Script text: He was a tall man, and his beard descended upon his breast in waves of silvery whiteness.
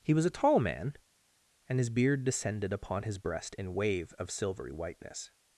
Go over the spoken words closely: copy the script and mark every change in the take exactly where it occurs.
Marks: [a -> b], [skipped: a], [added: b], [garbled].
He was a tall man, and his beard descended upon his breast in [waves -> wave] of silvery whiteness.